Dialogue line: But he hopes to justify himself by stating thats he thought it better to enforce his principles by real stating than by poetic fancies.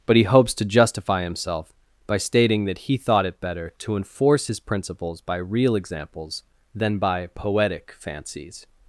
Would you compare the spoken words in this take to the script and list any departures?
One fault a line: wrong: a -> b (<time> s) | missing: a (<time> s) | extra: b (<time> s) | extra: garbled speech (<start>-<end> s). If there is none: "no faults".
wrong: thats -> that (2.6 s)
wrong: stating -> examples (5.8 s)